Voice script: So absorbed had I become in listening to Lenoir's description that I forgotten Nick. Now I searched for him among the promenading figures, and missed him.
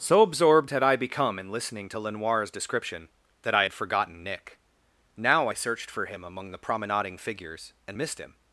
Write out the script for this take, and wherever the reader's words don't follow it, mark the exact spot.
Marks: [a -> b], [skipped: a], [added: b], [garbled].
So absorbed had I become in listening to Lenoir's description that I [added: had] forgotten Nick. Now I searched for him among the promenading figures, and missed him.